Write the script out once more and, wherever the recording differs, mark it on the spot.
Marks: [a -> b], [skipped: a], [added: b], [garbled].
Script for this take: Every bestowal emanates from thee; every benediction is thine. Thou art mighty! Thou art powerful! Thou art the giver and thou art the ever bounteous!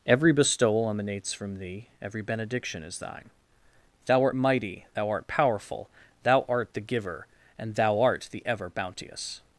Every bestowal emanates from thee; every benediction is thine. Thou art mighty! Thou art powerful! Thou art the giver and thou art the ever bounteous!